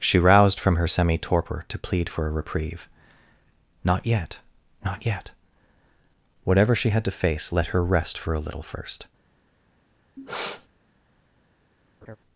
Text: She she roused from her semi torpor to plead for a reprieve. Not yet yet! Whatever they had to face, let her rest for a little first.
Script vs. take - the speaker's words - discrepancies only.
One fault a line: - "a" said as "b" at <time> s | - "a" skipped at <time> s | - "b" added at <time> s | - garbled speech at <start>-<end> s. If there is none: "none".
- "she" skipped at 0.2 s
- "not" added at 4.8 s
- "they" said as "she" at 6.8 s